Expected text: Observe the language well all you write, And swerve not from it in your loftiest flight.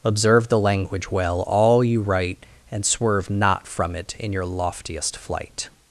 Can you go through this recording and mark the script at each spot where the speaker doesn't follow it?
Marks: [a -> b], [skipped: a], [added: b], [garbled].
Observe the language well all you write, And swerve not from it in your loftiest flight.